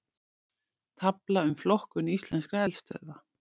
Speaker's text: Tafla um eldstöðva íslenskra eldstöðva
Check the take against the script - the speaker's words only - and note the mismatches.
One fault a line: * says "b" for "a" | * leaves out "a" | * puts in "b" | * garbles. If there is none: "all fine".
* says "flokkun" for "eldstöðva"